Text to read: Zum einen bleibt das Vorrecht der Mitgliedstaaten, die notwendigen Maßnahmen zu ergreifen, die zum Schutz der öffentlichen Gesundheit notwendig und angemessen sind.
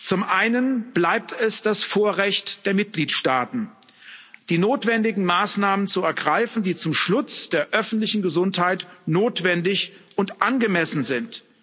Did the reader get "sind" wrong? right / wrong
right